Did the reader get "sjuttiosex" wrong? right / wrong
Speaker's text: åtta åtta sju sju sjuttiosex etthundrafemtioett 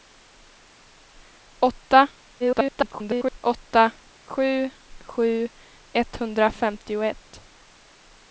wrong